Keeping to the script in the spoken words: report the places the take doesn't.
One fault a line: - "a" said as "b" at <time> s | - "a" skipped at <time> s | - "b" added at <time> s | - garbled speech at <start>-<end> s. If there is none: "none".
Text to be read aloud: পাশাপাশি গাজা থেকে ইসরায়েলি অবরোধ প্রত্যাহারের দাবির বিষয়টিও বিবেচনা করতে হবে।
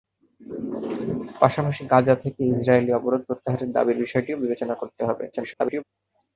- garbled speech at 5.3-5.8 s